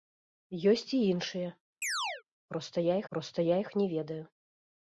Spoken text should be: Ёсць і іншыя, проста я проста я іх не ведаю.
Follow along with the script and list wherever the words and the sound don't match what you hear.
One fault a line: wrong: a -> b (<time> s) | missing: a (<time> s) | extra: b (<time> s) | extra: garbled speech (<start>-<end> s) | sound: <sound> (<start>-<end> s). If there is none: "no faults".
sound: chirp (1.8-2.2 s)